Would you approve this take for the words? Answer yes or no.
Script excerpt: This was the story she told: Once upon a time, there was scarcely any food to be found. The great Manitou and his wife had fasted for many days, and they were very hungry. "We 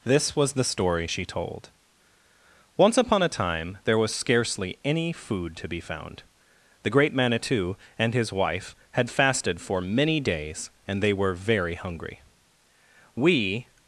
yes